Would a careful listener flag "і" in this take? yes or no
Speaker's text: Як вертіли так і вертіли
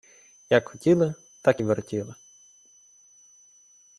no